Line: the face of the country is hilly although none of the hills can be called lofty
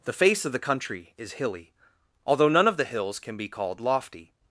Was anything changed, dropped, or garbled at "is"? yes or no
no